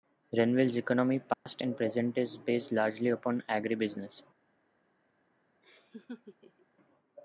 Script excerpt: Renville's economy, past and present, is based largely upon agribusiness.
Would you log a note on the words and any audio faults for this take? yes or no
yes